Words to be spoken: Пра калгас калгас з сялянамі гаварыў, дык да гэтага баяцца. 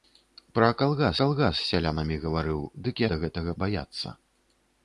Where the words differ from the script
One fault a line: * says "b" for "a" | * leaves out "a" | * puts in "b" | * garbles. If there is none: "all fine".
all fine